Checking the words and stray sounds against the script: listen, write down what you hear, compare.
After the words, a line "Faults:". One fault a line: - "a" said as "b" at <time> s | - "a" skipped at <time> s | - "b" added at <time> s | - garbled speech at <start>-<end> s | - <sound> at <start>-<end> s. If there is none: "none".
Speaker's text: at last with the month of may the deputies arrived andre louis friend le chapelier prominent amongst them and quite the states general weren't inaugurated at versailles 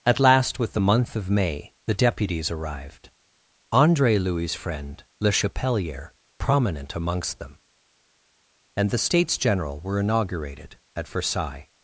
at last with the month of may the deputies arrived andre louis friend le chapelier prominent amongst them and the states general were inaugurated at versailles
Faults:
- "quite" skipped at 8.9 s
- "weren't" said as "were" at 9.8 s